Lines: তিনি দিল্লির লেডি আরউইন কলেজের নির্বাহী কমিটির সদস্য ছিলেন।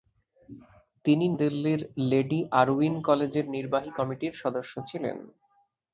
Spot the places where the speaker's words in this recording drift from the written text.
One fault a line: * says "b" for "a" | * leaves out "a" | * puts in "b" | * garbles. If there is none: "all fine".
all fine